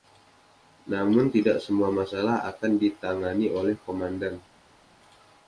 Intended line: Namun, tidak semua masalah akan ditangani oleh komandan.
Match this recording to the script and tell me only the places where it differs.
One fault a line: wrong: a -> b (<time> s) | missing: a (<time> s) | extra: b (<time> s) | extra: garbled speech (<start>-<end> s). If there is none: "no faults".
no faults